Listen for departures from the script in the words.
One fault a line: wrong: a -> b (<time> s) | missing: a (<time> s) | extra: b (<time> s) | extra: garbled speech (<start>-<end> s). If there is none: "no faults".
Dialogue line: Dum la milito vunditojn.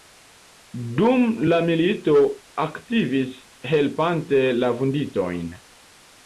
extra: aktivis helpante la (2.7 s)